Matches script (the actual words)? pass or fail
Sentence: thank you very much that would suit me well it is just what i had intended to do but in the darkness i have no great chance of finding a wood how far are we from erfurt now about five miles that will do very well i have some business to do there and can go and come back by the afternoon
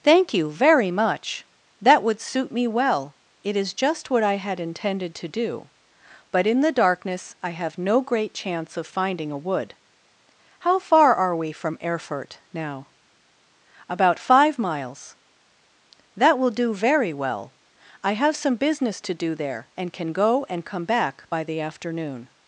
pass